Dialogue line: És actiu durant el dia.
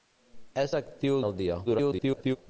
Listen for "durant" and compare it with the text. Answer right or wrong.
wrong